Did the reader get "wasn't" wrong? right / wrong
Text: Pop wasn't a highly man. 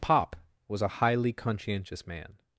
wrong